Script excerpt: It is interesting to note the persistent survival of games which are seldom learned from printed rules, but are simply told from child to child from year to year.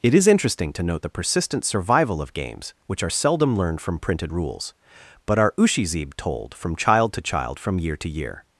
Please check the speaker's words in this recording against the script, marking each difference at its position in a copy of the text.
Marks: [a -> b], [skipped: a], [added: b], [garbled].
It is interesting to note the persistent survival of games which are seldom learned from printed rules, but are [simply -> ushizib] told from child to child from year to year.